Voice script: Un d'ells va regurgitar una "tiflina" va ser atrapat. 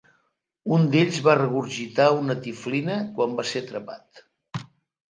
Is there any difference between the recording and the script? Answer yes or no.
yes